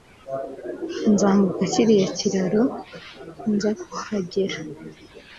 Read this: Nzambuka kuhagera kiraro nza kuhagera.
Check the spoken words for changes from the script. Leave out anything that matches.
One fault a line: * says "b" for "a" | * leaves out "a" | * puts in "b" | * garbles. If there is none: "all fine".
* says "kiriya" for "kuhagera"